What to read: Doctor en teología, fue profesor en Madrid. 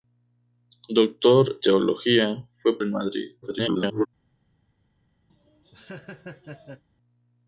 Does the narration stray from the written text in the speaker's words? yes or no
yes